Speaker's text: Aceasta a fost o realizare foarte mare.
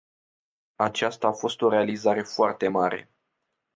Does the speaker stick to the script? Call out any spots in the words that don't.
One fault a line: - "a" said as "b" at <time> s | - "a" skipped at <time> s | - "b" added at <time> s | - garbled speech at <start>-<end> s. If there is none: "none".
none